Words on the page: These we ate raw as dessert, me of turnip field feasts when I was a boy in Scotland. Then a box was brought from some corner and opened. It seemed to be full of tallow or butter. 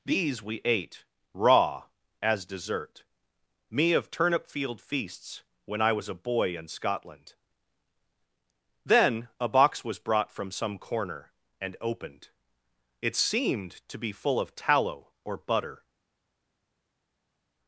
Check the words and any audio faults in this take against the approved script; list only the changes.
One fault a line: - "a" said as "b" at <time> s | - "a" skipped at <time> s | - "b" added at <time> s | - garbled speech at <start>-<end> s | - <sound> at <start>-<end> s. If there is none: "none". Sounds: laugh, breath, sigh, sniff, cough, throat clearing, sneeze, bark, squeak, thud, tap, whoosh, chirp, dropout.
none